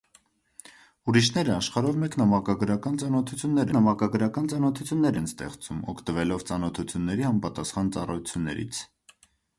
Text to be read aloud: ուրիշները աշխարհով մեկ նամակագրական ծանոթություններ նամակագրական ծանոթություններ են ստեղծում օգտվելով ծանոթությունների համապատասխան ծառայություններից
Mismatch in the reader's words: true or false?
false